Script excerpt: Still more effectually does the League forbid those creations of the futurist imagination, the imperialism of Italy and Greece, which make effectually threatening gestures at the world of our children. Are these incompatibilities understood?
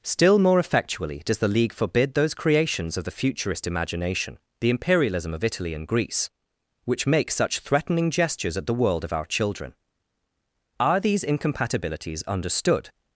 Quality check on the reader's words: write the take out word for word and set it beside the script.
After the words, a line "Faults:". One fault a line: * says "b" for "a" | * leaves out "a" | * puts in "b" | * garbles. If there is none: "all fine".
Still more effectually does the League forbid those creations of the futurist imagination, the imperialism of Italy and Greece, which make such threatening gestures at the world of our children. Are these incompatibilities understood?
Faults:
* says "such" for "effectually"